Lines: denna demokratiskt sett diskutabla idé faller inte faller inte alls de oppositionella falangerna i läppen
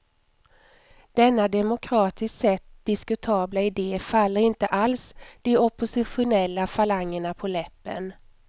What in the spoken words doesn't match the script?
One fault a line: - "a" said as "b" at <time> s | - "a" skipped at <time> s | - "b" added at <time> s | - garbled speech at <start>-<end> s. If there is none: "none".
- "faller inte" skipped at 4.7 s
- "i" said as "på" at 7.3 s